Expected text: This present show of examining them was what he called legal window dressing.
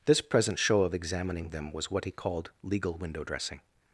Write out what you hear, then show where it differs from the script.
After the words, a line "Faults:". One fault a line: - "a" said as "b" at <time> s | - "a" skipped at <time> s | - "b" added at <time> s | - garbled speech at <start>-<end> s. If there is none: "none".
This present show of examining them was what he called legal window dressing.
Faults:
none